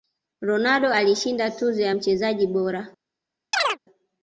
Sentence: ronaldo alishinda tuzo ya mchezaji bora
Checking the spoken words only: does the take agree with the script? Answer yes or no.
yes